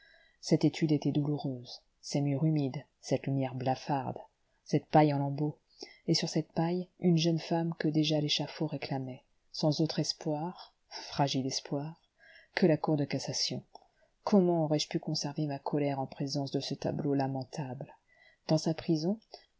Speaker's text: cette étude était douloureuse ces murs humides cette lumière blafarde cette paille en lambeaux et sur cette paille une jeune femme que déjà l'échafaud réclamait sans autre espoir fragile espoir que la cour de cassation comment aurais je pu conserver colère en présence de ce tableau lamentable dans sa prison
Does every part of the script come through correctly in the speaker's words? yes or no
no